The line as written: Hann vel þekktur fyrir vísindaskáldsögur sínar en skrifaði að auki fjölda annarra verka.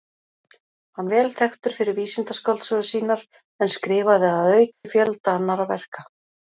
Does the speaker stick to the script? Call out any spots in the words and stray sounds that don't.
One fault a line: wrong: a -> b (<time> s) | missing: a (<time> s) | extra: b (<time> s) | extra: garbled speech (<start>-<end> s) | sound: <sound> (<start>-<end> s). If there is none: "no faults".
sound: dropout (4.7-4.8 s)